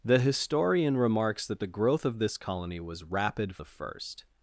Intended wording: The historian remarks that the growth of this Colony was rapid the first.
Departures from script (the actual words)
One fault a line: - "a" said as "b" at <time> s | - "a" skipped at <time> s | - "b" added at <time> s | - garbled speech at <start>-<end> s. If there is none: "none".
none